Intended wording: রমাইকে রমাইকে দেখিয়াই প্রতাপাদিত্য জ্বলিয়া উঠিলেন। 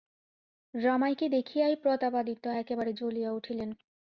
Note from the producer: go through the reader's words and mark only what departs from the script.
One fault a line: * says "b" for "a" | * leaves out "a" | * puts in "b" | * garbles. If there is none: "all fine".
* leaves out "রমাইকে"
* puts in "একেবারে"